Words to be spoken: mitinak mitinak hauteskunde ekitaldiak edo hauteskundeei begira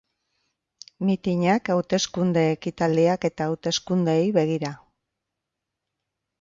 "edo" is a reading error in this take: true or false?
true